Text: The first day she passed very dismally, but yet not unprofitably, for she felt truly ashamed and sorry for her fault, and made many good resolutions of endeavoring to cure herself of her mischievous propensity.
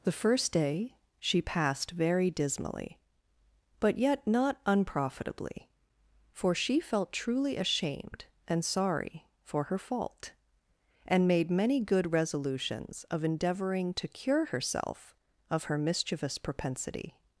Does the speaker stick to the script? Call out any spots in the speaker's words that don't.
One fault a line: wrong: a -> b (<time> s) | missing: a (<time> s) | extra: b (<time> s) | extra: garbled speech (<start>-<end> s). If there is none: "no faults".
no faults